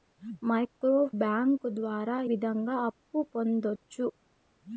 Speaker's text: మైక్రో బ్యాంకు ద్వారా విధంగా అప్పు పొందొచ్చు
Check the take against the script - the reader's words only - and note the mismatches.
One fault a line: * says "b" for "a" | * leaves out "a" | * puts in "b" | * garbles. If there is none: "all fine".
all fine